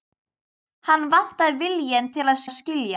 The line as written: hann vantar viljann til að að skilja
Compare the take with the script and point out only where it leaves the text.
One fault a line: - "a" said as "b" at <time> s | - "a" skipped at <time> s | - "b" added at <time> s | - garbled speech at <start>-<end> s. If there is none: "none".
none